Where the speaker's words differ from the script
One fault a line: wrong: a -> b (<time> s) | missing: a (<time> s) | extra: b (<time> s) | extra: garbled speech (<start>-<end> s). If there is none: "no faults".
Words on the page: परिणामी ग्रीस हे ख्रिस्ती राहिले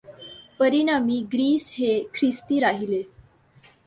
no faults